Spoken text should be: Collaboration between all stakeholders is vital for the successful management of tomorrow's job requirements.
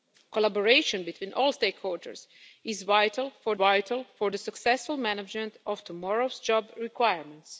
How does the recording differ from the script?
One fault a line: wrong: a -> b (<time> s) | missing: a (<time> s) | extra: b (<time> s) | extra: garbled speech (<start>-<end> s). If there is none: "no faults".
extra: vital for (3.5 s)